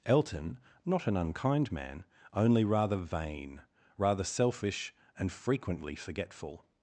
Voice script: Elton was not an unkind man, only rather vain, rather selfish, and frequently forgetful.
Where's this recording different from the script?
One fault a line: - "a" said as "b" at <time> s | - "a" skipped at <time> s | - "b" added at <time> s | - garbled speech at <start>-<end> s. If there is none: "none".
- "was" skipped at 0.6 s